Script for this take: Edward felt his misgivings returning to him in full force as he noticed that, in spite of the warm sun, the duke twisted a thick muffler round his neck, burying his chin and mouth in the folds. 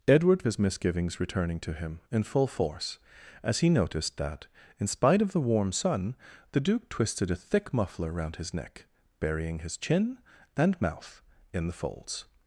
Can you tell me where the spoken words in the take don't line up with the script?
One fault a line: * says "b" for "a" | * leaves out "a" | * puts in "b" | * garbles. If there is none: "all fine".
* leaves out "felt"